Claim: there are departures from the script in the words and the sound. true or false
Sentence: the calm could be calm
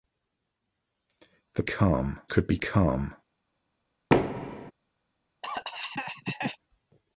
true